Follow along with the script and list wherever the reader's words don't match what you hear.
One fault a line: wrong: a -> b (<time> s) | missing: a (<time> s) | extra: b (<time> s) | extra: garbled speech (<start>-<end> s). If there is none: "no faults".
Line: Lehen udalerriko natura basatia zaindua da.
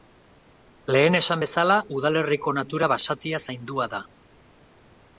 extra: esan bezala (1.2 s)